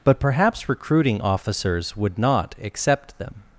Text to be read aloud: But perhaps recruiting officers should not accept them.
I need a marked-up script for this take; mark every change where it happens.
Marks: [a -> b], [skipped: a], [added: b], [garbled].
But perhaps recruiting officers [should -> would] not accept them.